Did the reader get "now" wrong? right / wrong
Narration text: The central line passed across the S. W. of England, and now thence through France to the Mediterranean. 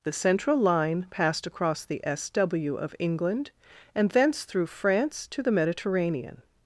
wrong